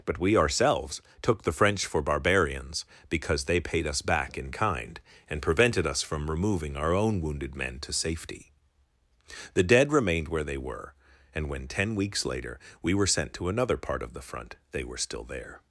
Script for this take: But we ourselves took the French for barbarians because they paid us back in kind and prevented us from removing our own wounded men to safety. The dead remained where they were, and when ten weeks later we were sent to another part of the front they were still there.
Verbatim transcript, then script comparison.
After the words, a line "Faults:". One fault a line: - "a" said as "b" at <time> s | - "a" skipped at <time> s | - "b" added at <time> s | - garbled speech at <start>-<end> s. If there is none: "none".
But we ourselves took the French for barbarians because they paid us back in kind and prevented us from removing our own wounded men to safety. The dead remained where they were, and when ten weeks later we were sent to another part of the front they were still there.
Faults:
none